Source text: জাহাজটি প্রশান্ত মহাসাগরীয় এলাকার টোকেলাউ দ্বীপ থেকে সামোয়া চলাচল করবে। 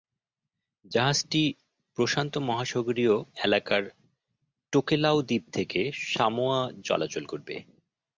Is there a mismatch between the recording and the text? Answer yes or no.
no